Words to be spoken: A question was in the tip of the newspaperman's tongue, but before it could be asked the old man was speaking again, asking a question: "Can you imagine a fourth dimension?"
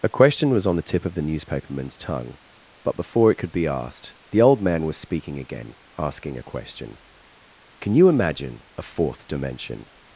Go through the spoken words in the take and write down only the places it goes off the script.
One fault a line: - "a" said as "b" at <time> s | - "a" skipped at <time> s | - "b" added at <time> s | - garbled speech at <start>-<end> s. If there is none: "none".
- "in" said as "on" at 0.7 s